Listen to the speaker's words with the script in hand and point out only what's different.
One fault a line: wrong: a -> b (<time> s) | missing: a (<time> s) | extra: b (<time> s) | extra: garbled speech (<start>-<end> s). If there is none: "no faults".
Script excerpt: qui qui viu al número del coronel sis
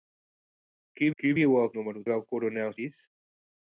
no faults